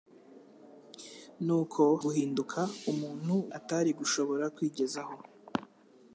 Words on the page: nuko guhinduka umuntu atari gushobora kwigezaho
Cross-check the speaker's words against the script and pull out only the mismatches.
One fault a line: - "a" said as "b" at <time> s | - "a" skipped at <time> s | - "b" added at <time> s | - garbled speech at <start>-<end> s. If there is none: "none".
none